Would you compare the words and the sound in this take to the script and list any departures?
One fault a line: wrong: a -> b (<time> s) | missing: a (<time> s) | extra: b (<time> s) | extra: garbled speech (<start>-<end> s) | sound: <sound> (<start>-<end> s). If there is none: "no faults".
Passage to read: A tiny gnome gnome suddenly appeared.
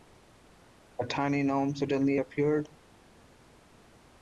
missing: gnome (1.8 s)